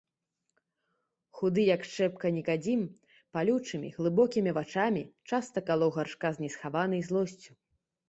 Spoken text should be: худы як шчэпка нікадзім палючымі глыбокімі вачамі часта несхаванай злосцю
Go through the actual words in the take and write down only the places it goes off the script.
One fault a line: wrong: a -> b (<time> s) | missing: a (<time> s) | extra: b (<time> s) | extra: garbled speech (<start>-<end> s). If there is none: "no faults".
extra: калоў гаршка з (5.7 s)